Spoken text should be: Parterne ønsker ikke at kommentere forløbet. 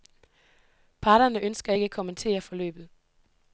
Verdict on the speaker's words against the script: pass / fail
pass